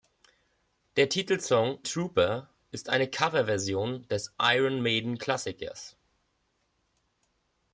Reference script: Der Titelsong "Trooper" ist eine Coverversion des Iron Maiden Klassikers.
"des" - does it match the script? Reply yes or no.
yes